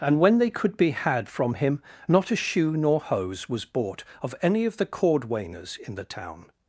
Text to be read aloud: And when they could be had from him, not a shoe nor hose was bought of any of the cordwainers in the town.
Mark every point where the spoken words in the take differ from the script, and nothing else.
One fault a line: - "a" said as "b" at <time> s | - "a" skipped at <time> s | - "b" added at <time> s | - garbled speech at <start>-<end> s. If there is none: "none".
none